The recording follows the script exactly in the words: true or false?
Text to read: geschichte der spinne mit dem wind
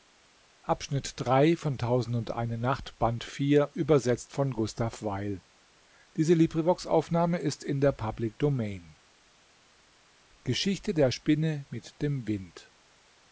true